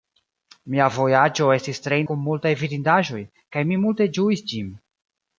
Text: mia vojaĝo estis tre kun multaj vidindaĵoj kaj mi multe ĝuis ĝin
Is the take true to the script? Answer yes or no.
yes